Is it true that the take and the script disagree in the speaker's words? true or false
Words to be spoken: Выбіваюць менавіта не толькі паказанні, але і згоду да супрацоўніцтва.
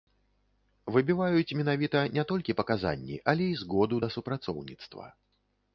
false